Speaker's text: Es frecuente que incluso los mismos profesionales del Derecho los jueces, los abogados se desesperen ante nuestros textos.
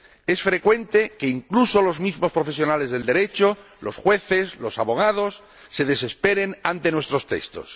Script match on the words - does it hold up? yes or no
yes